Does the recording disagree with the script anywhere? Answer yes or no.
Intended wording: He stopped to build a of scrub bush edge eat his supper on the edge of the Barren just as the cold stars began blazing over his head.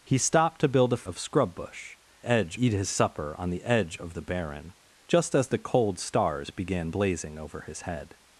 no